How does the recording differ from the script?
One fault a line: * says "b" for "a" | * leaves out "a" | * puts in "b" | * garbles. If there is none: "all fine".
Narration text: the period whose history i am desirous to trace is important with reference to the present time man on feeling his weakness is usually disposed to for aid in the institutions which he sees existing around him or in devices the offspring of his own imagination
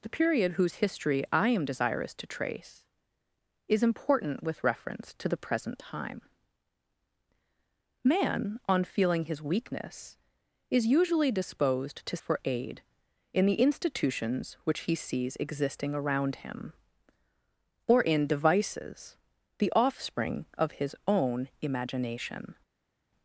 all fine